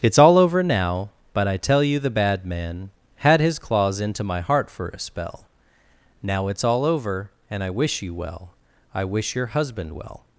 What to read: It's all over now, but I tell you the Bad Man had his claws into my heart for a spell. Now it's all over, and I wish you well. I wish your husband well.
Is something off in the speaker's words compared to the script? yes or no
no